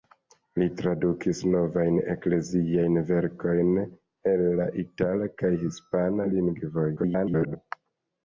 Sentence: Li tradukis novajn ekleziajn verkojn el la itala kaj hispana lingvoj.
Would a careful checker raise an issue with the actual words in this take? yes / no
yes